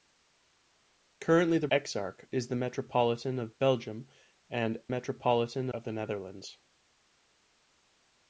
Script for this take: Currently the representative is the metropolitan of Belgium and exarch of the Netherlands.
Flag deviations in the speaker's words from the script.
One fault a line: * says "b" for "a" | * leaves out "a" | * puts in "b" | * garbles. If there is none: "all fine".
* says "exarch" for "representative"
* says "metropolitan" for "exarch"